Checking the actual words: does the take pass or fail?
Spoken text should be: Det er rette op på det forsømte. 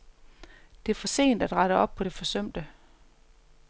fail